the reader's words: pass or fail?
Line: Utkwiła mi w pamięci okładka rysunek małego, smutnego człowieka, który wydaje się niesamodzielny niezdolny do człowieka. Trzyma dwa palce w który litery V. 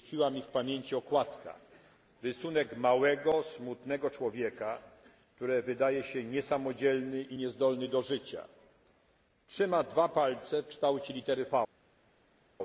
fail